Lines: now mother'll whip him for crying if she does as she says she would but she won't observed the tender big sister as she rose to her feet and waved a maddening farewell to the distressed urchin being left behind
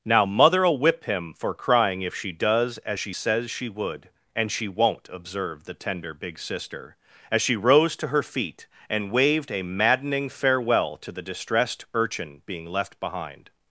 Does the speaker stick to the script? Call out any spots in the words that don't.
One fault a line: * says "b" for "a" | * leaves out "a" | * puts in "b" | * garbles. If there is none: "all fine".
* says "and" for "but"